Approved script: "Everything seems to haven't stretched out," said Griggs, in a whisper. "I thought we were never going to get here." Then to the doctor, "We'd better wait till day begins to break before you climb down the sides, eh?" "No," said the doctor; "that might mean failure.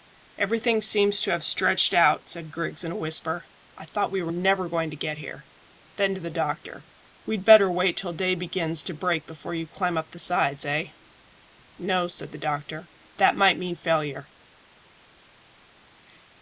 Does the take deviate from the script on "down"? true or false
true